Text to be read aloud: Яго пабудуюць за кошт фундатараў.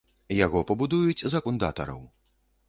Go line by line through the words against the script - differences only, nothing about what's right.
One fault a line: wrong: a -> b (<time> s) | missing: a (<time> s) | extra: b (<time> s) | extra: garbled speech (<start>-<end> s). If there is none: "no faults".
missing: кошт (1.4 s)